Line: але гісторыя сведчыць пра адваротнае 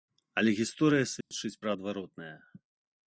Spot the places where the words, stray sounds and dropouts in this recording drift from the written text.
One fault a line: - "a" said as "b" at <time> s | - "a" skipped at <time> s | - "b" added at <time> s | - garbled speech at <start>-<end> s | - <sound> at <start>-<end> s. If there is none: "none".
- dropout at 1.2-1.3 s